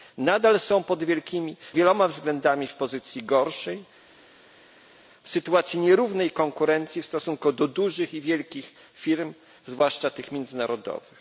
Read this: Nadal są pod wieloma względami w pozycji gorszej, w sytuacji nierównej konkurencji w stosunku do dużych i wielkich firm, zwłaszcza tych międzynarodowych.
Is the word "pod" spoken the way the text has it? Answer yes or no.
no